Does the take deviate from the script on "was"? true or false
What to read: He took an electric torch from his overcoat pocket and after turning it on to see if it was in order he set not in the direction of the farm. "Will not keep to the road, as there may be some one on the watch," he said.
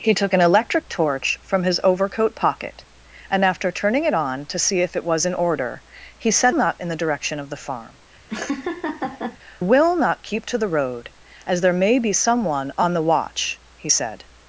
false